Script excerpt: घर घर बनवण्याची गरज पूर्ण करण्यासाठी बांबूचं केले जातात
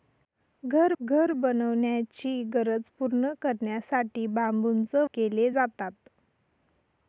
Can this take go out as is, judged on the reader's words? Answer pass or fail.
pass